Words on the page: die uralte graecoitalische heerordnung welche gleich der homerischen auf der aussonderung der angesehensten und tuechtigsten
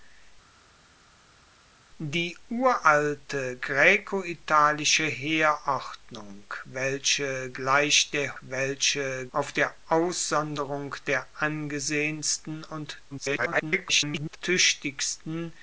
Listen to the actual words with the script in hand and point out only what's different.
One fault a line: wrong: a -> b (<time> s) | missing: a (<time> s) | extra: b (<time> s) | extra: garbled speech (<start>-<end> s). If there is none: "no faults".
wrong: homerischen -> welche (8.4 s)
extra: garbled speech (13.1-14.4 s)